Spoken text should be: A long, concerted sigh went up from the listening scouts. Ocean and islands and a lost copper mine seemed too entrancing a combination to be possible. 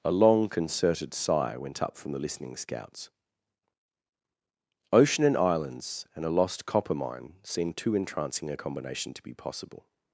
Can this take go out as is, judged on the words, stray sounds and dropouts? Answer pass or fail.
pass